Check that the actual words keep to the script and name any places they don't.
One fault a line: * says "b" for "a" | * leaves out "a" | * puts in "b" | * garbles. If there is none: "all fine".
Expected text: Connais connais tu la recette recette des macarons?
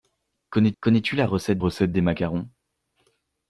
all fine